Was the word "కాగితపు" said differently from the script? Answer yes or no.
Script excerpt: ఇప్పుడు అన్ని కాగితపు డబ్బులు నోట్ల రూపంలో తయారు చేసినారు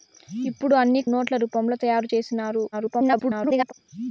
yes